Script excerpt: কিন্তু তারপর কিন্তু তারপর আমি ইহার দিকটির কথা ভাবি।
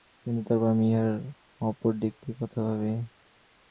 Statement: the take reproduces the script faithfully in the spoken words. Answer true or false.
false